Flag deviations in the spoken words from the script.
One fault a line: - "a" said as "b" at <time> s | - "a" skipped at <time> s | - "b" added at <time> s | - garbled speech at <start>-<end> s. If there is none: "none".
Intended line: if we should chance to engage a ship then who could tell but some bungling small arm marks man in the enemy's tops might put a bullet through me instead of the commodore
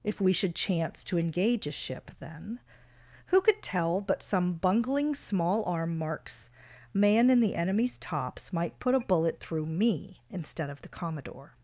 none